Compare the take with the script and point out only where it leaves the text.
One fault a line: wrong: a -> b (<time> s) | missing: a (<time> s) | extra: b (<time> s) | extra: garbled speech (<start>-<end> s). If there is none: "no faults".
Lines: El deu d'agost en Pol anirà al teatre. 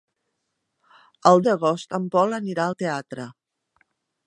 missing: deu (1.4 s)